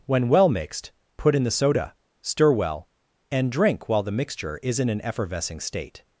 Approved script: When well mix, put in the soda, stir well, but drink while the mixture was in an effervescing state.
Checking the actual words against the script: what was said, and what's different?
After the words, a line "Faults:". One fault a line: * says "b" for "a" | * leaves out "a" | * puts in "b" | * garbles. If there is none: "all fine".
When well mixed, put in the soda, stir well, and drink while the mixture is in an effervescing state.
Faults:
* says "mixed" for "mix"
* says "and" for "but"
* says "is" for "was"